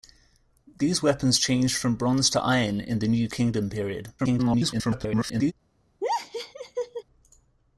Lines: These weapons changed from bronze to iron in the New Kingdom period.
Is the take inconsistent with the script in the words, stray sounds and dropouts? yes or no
yes